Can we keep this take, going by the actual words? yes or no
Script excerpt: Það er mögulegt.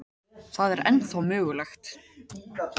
no